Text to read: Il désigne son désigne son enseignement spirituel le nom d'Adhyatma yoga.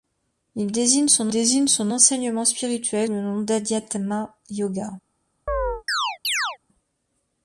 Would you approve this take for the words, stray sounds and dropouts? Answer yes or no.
no